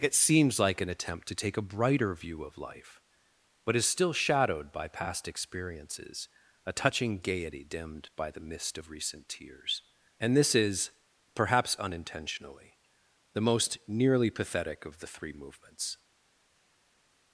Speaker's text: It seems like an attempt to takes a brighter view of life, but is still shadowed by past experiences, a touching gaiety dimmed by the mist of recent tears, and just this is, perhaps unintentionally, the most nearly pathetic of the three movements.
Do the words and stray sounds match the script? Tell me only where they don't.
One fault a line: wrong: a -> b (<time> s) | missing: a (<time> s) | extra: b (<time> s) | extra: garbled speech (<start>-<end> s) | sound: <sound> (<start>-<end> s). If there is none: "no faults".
wrong: takes -> take (1.4 s)
missing: just (10.4 s)